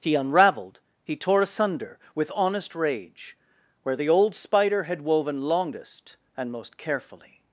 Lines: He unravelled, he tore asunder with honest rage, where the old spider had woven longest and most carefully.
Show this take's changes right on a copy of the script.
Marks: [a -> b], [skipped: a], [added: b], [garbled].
He unravelled, he tore asunder with honest rage, where the old spider had woven longest and most carefully.